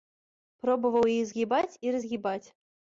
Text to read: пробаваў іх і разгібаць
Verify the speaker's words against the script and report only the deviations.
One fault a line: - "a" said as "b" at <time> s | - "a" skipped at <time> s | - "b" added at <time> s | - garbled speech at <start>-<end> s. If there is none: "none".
- "згібаць" added at 1.3 s